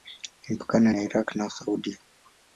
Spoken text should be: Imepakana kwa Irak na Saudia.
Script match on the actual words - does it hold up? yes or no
no